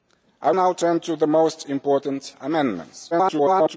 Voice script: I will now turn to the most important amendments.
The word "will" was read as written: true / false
false